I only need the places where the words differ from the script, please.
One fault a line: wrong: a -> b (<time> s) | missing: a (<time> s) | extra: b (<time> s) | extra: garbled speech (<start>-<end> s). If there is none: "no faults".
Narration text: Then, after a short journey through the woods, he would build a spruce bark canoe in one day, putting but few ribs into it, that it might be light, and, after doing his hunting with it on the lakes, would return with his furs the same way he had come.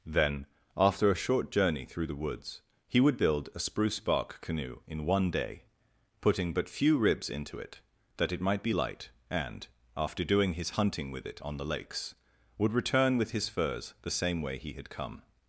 no faults